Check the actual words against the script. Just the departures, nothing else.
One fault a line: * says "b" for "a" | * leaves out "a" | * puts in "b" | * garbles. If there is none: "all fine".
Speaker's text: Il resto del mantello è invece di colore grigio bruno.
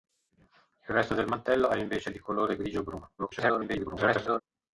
* garbles